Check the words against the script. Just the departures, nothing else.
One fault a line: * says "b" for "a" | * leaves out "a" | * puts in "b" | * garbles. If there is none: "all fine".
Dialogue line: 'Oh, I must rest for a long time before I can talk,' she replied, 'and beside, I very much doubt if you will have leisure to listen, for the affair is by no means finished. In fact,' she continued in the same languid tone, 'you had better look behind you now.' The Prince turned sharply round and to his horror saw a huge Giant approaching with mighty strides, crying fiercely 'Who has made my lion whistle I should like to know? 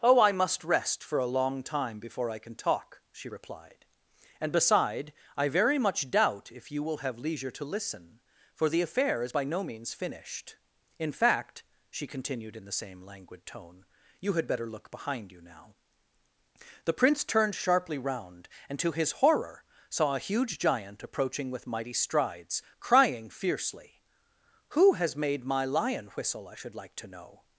all fine